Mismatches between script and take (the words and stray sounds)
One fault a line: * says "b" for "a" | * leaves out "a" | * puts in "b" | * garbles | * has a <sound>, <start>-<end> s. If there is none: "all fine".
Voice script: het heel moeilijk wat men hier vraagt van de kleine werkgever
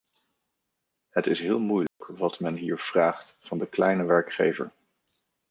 * puts in "is"
* has a dropout, 1.9-2.0 s